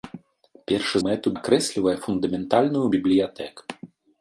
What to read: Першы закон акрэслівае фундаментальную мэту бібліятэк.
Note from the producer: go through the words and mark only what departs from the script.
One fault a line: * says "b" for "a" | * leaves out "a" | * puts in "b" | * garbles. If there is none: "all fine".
* says "мэту" for "закон"
* leaves out "мэту"